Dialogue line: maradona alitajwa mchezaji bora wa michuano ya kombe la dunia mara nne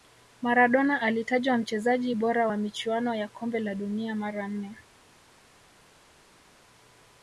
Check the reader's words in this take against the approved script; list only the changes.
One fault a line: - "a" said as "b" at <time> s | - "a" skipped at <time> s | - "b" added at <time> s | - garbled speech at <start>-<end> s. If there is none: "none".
none